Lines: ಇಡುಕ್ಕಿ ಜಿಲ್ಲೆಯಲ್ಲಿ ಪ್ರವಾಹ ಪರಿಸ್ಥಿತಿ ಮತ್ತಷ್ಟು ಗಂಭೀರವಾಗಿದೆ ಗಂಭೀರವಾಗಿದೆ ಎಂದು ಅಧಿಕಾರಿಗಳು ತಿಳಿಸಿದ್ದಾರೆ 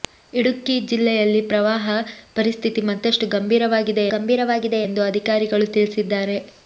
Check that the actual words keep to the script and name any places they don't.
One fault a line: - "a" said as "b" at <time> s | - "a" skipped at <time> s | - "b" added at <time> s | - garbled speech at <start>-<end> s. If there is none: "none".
none